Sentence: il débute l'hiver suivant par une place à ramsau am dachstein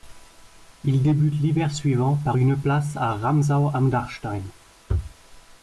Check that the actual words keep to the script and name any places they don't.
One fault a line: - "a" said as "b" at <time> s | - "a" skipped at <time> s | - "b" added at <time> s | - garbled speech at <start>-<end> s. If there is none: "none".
none